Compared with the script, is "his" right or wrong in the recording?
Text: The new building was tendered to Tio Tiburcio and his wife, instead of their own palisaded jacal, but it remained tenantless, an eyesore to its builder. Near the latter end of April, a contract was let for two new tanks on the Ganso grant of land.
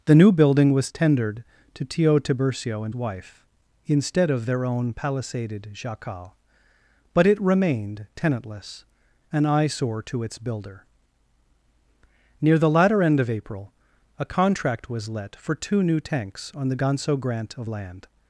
wrong